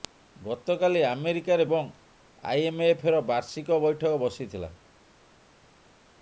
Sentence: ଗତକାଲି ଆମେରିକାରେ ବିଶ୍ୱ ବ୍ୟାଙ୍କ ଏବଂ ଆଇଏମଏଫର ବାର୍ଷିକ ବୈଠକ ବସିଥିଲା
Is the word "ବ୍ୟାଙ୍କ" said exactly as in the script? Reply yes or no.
no